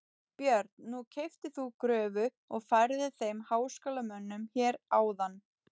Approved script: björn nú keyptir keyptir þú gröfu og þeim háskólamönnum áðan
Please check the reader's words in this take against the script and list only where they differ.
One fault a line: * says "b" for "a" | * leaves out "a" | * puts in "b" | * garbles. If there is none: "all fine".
* leaves out "keyptir"
* puts in "færðir"
* puts in "hér"